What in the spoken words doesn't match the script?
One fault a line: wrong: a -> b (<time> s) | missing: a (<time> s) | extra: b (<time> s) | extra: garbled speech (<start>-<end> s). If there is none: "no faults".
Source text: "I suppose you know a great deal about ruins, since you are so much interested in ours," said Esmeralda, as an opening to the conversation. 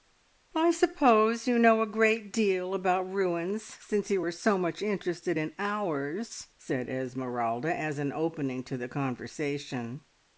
no faults